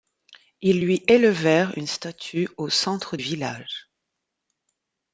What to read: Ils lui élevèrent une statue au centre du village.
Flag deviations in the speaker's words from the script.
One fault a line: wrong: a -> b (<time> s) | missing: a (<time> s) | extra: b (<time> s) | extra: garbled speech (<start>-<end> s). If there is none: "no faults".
missing: du (3.2 s)